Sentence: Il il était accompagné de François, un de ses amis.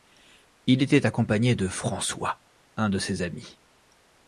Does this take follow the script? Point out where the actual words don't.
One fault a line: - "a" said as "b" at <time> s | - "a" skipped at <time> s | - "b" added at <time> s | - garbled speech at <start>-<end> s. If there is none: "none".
- "il" skipped at 0.8 s